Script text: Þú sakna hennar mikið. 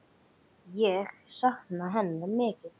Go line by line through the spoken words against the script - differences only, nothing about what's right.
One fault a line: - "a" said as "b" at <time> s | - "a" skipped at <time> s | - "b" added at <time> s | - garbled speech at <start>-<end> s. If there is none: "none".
- "Þú" said as "Ég" at 0.8 s